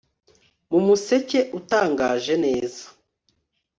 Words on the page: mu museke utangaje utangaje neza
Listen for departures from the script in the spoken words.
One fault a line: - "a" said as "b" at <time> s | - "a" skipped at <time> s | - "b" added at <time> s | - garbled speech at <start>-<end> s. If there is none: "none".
- "utangaje" skipped at 2.3 s